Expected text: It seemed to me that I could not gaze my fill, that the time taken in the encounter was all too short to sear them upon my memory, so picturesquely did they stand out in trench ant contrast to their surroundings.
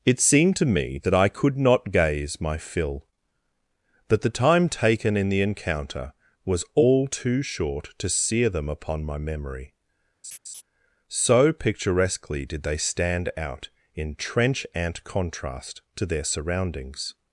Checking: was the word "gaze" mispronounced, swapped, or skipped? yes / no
no